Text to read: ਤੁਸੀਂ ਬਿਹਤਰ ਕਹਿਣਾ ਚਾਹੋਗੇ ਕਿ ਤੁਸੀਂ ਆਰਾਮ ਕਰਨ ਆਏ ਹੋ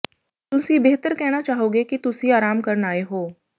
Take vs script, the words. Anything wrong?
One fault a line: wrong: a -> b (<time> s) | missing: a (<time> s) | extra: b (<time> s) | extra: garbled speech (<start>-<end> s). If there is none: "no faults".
no faults